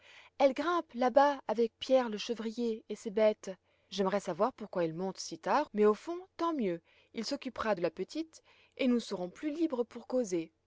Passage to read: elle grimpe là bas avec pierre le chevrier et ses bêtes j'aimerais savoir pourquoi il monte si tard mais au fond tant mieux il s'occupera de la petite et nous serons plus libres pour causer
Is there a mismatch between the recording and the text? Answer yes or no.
no